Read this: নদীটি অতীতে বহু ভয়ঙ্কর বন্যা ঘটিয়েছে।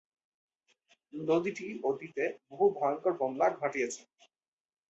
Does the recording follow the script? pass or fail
pass